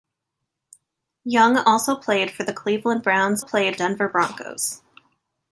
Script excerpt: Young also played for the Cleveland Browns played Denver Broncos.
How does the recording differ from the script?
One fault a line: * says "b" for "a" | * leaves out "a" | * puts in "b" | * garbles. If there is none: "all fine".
all fine